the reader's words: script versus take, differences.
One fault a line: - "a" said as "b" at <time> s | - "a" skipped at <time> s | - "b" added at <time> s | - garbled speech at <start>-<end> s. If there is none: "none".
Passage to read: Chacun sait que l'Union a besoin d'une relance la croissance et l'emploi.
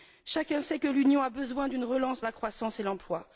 none